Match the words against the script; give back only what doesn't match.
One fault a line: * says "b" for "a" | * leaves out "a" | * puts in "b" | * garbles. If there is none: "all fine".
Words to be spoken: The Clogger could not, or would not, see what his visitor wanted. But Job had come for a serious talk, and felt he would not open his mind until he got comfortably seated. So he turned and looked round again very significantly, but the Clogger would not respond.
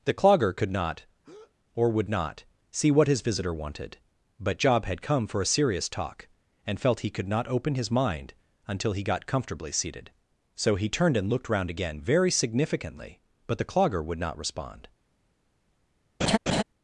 * says "could" for "would"